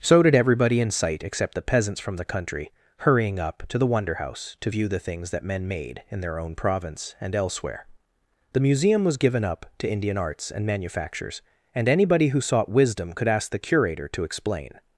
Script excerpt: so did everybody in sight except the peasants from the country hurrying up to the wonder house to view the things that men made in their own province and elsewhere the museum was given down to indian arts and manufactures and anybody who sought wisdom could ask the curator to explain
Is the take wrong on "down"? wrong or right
wrong